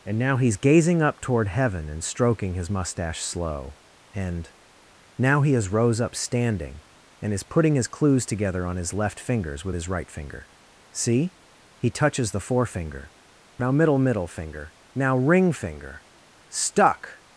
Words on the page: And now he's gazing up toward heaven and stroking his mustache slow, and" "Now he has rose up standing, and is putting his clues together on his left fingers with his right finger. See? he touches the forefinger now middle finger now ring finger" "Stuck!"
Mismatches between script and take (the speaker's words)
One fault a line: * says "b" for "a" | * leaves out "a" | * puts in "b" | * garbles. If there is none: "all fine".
* puts in "middle"